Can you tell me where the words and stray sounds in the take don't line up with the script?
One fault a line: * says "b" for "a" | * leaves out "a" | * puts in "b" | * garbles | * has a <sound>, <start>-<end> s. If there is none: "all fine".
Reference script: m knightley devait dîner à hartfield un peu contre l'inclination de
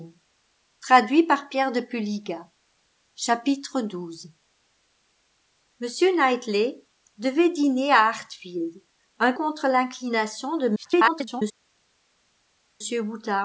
* leaves out "peu"
* garbles